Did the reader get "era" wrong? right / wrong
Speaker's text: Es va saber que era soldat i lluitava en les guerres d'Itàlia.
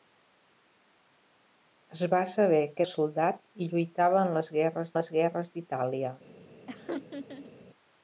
wrong